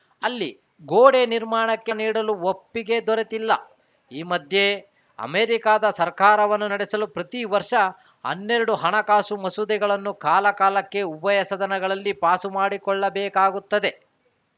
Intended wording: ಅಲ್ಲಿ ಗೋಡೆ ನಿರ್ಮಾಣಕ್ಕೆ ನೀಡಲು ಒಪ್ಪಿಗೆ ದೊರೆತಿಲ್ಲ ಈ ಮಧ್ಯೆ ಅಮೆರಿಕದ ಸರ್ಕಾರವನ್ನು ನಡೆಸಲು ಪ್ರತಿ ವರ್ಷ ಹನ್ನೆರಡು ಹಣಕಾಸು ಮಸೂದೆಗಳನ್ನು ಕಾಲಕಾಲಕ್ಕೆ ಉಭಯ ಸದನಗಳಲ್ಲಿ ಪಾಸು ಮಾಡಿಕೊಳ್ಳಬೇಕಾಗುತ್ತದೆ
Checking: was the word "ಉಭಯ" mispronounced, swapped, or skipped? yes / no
no